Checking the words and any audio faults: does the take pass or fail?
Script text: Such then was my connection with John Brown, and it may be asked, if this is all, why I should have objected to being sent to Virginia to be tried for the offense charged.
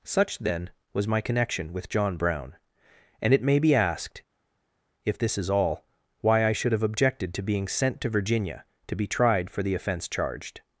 pass